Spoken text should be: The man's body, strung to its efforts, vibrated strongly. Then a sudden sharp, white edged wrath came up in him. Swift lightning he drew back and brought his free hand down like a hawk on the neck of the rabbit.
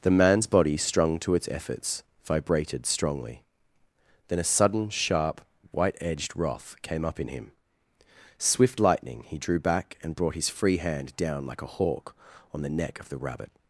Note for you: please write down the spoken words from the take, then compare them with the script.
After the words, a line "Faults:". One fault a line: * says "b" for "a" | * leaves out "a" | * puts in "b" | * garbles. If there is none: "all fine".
The man's body, strung to its efforts, vibrated strongly. Then a sudden sharp, white edged wrath came up in him. Swift lightning he drew back and brought his free hand down like a hawk on the neck of the rabbit.
Faults:
all fine